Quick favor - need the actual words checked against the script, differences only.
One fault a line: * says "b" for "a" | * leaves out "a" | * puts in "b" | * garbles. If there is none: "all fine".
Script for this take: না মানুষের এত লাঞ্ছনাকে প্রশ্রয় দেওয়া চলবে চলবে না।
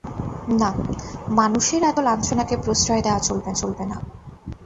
all fine